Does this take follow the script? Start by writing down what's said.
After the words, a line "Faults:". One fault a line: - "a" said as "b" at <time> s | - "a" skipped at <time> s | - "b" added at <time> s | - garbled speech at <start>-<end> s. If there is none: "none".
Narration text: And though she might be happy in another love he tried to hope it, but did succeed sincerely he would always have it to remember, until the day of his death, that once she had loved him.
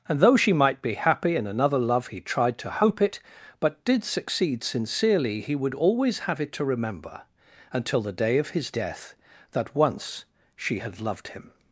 And though she might be happy in another love he tried to hope it, but did succeed sincerely he would always have it to remember, until the day of his death, that once she had loved him.
Faults:
none